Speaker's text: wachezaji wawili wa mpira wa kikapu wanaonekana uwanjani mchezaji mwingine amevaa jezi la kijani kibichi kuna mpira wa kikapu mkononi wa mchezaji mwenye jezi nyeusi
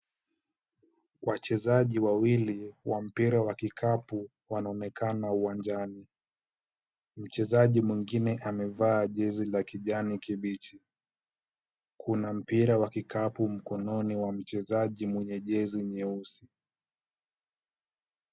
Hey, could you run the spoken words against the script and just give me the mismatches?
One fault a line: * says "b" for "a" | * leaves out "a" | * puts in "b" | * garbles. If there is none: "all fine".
all fine